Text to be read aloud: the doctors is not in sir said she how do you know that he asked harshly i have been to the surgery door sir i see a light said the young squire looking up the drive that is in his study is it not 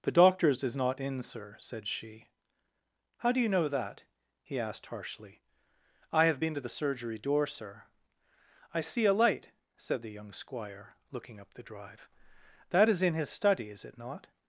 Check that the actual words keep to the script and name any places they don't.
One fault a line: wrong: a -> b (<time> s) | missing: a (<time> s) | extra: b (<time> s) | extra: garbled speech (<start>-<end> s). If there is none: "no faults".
no faults